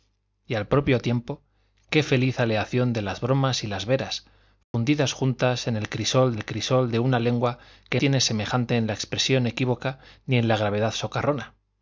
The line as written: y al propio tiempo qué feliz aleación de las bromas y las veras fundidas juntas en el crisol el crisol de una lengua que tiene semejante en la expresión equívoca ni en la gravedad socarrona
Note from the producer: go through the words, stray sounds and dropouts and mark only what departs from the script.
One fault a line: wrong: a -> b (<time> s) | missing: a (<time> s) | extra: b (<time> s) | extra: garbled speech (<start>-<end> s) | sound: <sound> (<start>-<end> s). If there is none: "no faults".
sound: dropout (4.6-4.7 s)